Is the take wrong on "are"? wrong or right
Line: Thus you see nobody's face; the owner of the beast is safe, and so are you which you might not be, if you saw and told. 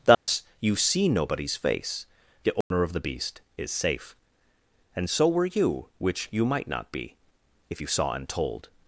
wrong